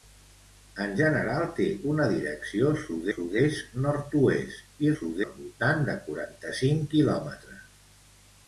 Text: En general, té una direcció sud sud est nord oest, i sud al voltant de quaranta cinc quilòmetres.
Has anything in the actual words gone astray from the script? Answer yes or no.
no